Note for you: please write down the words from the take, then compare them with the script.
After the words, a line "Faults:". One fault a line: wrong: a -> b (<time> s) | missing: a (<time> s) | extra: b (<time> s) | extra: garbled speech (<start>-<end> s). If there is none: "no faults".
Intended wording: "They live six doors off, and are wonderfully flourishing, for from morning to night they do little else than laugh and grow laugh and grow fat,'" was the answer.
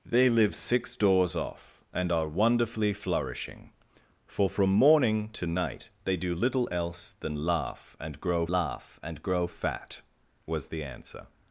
"They live six doors off, and are wonderfully flourishing, for from morning to night they do little else than laugh and grow laugh and grow fat,'" was the answer.
Faults:
no faults